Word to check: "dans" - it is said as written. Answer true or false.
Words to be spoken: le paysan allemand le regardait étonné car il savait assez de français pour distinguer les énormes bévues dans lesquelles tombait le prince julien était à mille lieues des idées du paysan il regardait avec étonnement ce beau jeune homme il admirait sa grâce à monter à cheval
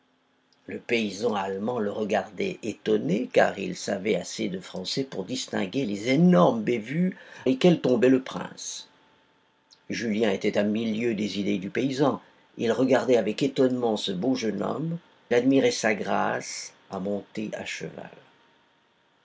false